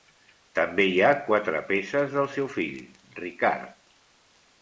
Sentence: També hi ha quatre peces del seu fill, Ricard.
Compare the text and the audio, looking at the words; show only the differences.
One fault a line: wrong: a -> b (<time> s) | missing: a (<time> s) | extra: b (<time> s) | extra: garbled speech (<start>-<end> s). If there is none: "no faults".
no faults